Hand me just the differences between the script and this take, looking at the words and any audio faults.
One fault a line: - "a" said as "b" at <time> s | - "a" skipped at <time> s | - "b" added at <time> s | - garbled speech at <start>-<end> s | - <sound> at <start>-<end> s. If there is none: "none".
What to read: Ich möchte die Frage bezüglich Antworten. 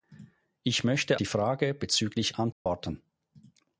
- dropout at 2.5-2.7 s